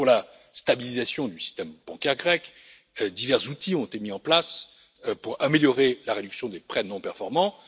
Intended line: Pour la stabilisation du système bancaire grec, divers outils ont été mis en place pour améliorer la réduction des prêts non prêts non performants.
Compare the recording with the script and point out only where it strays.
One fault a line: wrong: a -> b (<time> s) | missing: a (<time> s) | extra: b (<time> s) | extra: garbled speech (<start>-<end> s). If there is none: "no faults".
missing: prêts non (7.0 s)